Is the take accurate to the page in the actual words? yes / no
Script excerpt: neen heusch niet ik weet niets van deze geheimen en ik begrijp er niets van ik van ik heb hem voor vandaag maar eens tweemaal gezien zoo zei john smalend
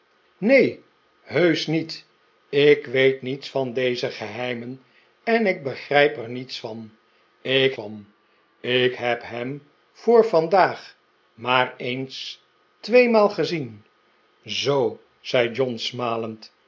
yes